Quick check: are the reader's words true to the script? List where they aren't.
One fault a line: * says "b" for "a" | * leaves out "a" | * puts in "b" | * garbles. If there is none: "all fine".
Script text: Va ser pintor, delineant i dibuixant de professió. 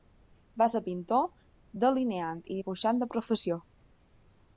all fine